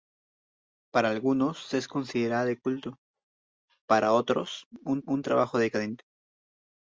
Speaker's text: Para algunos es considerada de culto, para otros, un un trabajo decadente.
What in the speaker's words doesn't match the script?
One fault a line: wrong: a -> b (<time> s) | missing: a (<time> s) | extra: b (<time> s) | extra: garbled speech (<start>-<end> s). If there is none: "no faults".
no faults